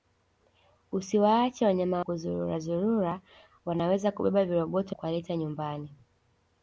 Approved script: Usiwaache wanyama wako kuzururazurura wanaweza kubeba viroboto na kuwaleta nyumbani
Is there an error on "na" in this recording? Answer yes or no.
yes